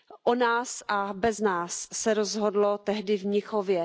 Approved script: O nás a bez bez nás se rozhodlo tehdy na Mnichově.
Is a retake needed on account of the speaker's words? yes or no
yes